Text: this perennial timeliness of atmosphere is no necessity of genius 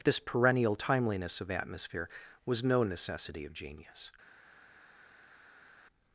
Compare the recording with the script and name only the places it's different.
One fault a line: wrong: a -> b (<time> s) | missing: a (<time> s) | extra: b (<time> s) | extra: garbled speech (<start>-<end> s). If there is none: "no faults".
wrong: is -> was (2.5 s)